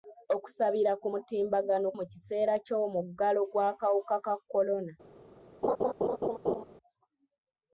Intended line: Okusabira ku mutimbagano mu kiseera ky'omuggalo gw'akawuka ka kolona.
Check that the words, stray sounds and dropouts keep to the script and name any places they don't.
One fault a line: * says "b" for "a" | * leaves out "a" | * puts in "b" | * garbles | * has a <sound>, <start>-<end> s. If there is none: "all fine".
* has a laugh, 5.6-6.6 s